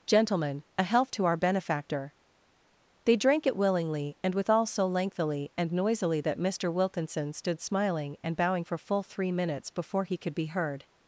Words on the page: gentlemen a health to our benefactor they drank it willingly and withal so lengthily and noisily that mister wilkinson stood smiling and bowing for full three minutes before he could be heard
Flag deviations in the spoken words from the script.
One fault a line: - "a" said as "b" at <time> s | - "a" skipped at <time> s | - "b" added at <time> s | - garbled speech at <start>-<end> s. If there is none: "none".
none